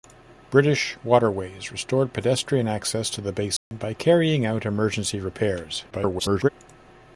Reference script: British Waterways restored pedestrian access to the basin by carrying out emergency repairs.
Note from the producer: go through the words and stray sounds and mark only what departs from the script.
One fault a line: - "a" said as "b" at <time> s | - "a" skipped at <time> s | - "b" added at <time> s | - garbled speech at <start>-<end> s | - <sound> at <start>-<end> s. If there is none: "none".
- dropout at 3.6-3.7 s
- garbled speech at 5.9-6.5 s